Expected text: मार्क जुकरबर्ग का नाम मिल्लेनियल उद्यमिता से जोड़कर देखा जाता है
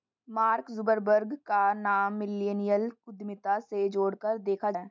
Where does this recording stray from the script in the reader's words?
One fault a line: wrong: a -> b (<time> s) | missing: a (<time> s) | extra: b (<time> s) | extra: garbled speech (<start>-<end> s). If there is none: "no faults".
missing: जाता (4.7 s)